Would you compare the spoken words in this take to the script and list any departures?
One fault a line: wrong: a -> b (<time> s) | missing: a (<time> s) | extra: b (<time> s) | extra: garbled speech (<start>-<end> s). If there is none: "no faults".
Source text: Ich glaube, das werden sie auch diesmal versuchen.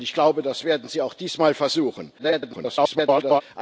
extra: garbled speech (2.2-3.4 s)